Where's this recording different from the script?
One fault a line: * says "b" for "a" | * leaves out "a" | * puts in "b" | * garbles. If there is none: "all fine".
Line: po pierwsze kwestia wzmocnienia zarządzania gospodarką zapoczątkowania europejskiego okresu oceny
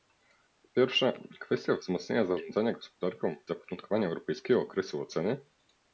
all fine